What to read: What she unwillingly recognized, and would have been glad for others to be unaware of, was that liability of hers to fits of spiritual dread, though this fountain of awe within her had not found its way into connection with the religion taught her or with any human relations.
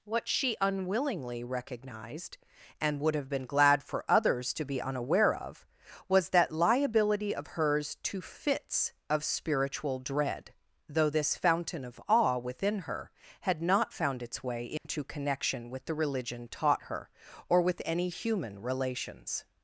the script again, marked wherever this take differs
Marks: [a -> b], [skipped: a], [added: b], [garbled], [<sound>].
What she unwillingly recognized, and would have been glad for others to be unaware of, was that liability of hers to fits of spiritual dread, though this fountain of awe within her had not found its way into [dropout] connection with the religion taught her or with any human relations.